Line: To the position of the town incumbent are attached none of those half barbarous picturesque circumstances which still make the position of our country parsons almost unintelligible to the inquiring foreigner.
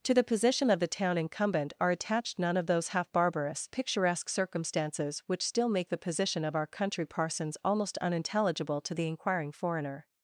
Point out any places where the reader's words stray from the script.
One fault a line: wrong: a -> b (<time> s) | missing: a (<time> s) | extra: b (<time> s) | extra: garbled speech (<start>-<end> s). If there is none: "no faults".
no faults